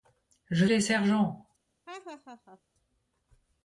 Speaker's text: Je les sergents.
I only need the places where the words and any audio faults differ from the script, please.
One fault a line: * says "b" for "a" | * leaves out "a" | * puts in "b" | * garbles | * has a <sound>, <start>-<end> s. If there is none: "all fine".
* has a laugh, 1.9-2.6 s